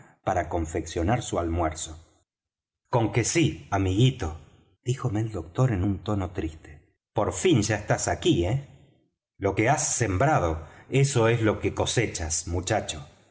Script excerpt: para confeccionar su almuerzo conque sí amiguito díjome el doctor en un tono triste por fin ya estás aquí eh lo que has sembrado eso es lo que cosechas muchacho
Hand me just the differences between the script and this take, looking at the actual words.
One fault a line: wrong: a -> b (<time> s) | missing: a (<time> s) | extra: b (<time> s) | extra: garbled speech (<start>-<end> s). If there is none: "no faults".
no faults